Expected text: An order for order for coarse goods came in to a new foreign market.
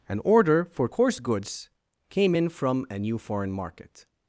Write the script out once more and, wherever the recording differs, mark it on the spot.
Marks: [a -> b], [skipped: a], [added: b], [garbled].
An order for [skipped: order for] coarse goods came in [to -> from] a new foreign market.